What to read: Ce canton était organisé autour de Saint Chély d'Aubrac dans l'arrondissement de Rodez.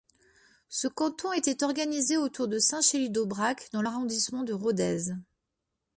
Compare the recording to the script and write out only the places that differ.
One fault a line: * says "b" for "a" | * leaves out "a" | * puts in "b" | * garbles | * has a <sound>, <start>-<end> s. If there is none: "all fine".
all fine